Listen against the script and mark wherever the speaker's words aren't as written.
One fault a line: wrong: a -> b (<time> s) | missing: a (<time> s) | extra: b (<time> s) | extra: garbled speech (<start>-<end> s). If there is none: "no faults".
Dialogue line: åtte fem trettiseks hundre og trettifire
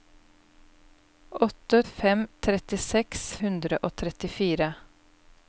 no faults